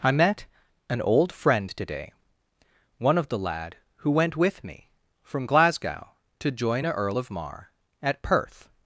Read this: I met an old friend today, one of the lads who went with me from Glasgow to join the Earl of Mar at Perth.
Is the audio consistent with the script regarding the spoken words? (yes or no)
no